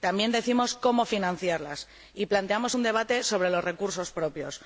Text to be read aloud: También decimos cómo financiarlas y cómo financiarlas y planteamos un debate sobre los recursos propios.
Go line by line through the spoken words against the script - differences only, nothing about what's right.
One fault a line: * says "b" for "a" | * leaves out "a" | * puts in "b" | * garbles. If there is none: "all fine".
* leaves out "cómo financiarlas y"